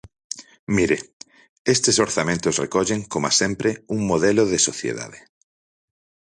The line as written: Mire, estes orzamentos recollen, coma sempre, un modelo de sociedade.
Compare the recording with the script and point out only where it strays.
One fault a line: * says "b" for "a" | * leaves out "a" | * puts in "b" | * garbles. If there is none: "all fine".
all fine